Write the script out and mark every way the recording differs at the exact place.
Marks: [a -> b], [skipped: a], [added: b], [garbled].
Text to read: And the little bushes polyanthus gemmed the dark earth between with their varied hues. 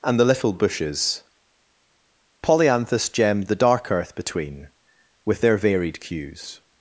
And the little bushes polyanthus gemmed the dark earth between with their varied hues.